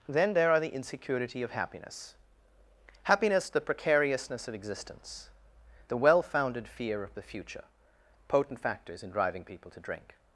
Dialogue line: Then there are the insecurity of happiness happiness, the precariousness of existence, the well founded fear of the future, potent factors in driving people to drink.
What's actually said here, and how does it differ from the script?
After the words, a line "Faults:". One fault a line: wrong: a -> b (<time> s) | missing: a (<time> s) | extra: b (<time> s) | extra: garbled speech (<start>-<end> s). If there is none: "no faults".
Then there are the insecurity of happiness happiness, the precariousness of existence, the well founded fear of the future, potent factors in driving people to drink.
Faults:
no faults